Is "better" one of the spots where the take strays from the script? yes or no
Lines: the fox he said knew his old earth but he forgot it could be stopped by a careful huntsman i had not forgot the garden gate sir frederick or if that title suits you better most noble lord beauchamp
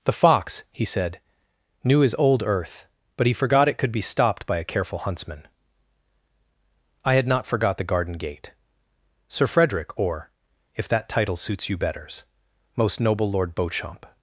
yes